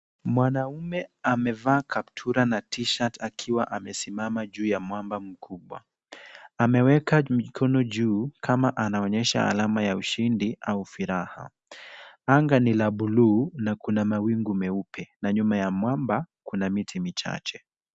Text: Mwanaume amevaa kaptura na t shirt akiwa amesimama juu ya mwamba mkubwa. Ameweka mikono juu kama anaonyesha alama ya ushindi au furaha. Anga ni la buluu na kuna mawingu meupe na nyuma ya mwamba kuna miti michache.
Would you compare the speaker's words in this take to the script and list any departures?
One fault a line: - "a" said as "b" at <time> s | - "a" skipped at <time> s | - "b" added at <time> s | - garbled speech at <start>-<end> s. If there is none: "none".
none